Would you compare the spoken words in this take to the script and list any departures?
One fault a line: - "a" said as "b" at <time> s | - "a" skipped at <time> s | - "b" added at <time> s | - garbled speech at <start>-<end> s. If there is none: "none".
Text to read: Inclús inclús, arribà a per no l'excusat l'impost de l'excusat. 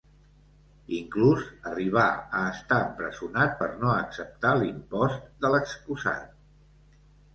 - "inclús" skipped at 1.4 s
- "estar empresonat" added at 2.5 s
- "l'excusat" said as "acceptar" at 3.9 s